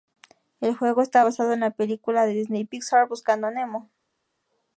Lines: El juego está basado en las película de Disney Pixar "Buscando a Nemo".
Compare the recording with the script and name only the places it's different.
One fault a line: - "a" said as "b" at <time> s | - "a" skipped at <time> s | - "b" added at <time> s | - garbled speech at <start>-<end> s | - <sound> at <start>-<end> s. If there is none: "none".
- "las" said as "la" at 1.6 s